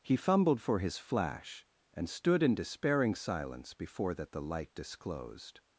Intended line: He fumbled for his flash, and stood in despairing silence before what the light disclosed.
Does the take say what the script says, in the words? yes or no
no